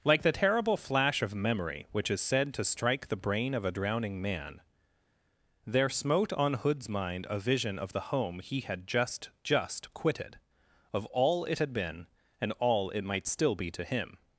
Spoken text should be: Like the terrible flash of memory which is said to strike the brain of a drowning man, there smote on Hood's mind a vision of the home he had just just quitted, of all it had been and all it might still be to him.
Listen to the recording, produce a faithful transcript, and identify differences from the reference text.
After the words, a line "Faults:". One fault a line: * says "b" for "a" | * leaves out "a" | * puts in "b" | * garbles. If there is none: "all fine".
Like the terrible flash of memory which is said to strike the brain of a drowning man, there smote on Hood's mind a vision of the home he had just just quitted, of all it had been and all it might still be to him.
Faults:
all fine